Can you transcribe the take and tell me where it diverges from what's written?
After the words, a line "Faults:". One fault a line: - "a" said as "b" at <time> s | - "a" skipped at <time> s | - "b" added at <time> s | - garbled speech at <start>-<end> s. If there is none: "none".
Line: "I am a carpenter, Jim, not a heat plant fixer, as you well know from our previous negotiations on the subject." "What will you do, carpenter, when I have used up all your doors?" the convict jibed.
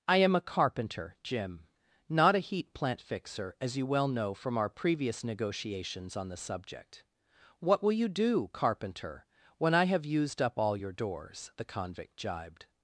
"I am a carpenter, Jim, not a heat plant fixer, as you well know from our previous negotiations on the subject." "What will you do, carpenter, when I have used up all your doors?" the convict jibed.
Faults:
none